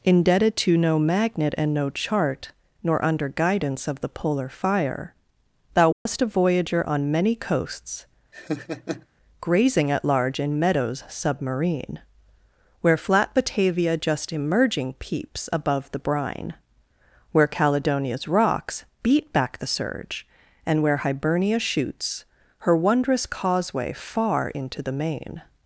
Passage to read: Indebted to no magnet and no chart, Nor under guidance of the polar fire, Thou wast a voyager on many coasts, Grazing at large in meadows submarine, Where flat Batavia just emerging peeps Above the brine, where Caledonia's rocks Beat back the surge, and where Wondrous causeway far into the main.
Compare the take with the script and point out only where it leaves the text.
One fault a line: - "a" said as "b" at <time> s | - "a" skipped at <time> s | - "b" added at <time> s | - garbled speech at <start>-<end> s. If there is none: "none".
- "Hibernia shoots Her" added at 21.0 s